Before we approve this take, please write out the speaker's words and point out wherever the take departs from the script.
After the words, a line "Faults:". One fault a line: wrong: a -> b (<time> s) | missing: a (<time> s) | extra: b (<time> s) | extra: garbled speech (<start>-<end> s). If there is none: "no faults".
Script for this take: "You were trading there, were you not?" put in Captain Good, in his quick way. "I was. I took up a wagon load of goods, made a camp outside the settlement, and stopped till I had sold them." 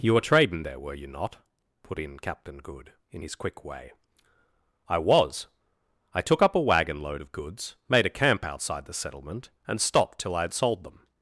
"You were trading there, were you not?" put in Captain Good, in his quick way. "I was. I took up a wagon load of goods, made a camp outside the settlement, and stopped till I had sold them."
Faults:
no faults